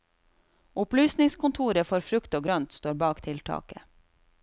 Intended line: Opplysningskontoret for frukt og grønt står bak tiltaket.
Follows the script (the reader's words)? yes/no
yes